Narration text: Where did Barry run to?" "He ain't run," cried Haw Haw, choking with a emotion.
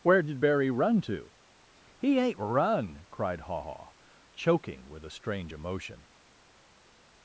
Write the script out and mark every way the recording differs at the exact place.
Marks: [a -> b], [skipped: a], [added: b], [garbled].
Where did Barry run to?" "He ain't run," cried Haw Haw, choking with a [added: strange] emotion.